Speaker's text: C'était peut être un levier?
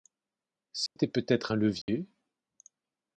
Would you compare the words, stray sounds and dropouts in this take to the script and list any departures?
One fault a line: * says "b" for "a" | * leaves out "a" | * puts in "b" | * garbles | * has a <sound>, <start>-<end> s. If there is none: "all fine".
* has a dropout, 0.9-1.0 s
* has a dropout, 1.8-1.9 s